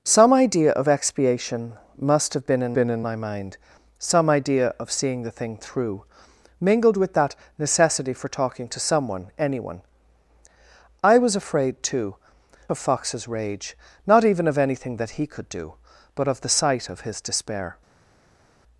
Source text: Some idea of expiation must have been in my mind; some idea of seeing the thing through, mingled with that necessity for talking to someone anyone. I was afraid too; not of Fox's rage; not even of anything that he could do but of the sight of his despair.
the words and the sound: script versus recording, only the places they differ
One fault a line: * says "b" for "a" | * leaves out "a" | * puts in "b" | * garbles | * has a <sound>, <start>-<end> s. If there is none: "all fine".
* puts in "been in"
* leaves out "not"